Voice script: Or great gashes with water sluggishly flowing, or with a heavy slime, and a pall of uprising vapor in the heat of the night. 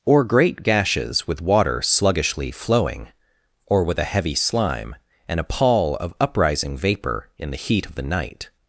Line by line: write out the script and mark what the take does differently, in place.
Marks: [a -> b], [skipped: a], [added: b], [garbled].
Or great gashes with water sluggishly flowing, or with a heavy slime, and a pall of uprising vapor in the heat of the night.